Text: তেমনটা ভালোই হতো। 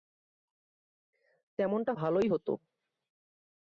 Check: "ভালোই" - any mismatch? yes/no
no